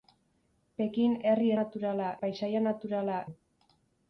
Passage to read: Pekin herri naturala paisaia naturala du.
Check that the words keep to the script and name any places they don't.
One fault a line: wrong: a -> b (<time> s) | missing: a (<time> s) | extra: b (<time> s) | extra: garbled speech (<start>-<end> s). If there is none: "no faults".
no faults